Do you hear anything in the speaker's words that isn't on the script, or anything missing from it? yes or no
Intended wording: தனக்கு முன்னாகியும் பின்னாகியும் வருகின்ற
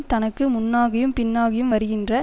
no